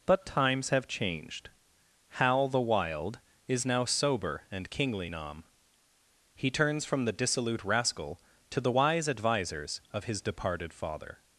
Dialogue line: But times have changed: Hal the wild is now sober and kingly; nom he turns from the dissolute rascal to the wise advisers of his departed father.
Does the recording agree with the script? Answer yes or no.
yes